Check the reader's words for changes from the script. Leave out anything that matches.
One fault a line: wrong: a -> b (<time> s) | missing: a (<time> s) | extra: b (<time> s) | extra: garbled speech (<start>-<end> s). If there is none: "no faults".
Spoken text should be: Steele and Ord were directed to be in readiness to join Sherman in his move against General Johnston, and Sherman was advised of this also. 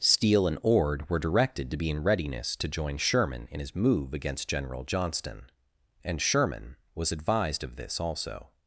no faults